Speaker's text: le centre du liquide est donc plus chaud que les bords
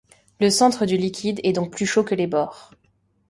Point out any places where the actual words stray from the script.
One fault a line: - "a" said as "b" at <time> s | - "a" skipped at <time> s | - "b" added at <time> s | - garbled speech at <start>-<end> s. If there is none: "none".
none